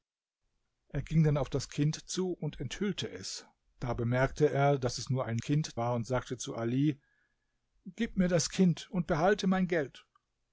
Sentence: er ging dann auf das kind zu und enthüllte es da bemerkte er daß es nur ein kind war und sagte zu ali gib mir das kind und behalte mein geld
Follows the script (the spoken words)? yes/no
yes